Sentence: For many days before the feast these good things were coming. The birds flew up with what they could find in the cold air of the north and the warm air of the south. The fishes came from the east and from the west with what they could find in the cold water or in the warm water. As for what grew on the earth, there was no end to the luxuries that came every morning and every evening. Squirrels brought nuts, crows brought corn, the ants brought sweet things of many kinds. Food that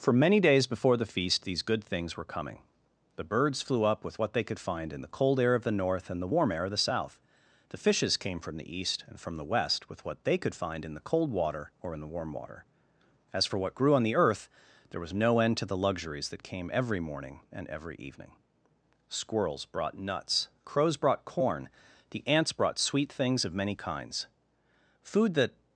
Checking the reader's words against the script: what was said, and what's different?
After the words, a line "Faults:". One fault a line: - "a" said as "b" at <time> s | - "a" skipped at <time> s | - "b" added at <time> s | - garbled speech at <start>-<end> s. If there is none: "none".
For many days before the feast these good things were coming. The birds flew up with what they could find in the cold air of the north and the warm air of the south. The fishes came from the east and from the west with what they could find in the cold water or in the warm water. As for what grew on the earth, there was no end to the luxuries that came every morning and every evening. Squirrels brought nuts, crows brought corn, the ants brought sweet things of many kinds. Food that
Faults:
none